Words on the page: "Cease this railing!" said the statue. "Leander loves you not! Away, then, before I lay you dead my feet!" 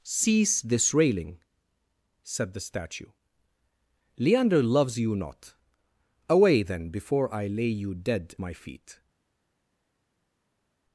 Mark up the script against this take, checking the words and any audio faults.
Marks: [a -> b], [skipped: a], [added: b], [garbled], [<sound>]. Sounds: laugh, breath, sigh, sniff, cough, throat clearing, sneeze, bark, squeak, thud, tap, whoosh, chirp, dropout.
"Cease this railing!" said the statue. "Leander loves you not! Away, then, before I lay you dead my feet!"